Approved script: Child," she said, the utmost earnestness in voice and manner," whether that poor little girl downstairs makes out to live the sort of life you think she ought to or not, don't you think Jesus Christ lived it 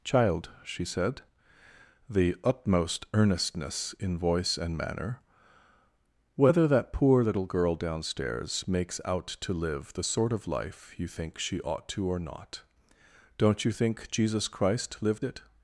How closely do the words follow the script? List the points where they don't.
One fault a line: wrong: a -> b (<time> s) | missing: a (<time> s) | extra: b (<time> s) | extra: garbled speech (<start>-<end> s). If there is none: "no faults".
no faults